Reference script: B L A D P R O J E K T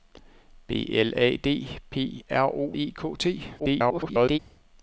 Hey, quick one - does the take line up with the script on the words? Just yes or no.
no